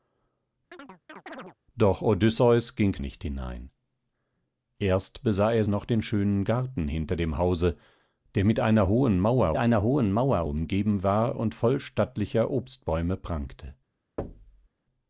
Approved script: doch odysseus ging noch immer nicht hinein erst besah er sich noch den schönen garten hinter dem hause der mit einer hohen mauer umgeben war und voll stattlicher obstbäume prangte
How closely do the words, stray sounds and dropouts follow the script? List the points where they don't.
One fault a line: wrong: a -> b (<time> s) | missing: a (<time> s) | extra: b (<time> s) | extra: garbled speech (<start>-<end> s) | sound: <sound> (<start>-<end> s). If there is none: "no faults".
sound: chirp (0.7-1.6 s)
missing: noch immer (3.0 s)
missing: sich (5.6 s)
extra: einer hohen mauer (9.6 s)
sound: thud (14.2-14.7 s)